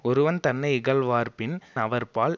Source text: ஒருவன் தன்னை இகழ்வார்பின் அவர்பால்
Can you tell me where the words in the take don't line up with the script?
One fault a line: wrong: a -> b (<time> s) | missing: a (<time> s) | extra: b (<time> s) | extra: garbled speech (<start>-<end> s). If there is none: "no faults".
no faults